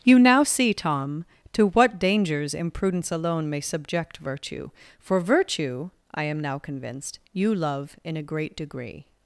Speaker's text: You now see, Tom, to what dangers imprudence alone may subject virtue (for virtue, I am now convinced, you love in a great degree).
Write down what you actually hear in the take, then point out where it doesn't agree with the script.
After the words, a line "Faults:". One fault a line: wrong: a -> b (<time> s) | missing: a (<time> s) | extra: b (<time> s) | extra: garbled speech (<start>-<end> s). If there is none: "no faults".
You now see, Tom, to what dangers imprudence alone may subject virtue (for virtue, I am now convinced, you love in a great degree).
Faults:
no faults